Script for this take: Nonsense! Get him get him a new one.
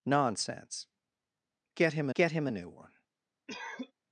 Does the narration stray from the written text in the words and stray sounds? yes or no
yes